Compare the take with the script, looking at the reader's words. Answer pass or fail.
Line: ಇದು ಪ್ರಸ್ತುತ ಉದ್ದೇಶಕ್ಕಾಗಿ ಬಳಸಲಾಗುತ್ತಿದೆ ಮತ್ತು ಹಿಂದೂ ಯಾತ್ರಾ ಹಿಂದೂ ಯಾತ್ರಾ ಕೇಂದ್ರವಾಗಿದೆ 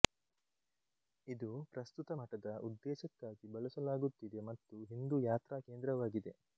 fail